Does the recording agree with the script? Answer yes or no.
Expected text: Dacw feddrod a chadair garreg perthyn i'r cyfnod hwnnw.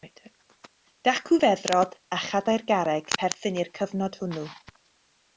yes